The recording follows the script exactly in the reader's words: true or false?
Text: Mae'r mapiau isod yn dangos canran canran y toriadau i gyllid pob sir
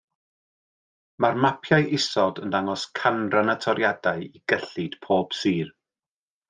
false